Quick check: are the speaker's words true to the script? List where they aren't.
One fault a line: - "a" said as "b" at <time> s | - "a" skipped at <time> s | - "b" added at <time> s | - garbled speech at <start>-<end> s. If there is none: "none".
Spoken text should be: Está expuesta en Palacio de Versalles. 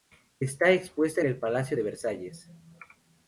- "el" added at 1.2 s